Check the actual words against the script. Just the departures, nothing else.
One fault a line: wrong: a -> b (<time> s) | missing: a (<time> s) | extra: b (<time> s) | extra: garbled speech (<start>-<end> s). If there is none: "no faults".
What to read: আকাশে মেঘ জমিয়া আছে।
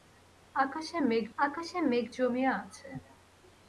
extra: আকাশে মেঘ (1.4 s)